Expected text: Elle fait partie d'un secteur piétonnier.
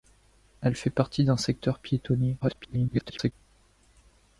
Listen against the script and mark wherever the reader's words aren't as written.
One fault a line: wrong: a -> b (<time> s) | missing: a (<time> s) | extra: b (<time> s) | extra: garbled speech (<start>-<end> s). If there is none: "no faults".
extra: garbled speech (2.4-3.3 s)